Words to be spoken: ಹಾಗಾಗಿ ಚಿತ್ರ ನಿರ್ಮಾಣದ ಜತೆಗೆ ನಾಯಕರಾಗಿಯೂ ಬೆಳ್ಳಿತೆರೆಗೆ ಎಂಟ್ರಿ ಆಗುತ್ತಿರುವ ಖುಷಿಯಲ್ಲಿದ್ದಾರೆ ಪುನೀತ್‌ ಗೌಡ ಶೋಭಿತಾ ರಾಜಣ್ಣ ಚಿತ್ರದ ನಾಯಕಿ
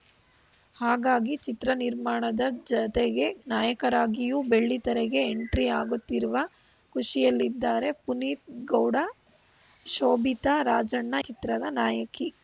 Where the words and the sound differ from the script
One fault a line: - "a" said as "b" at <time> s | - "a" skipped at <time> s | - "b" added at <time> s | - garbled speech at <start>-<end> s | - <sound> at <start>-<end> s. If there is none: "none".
none